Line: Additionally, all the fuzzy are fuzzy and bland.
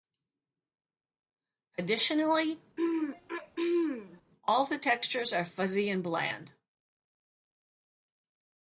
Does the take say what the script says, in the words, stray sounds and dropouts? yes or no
no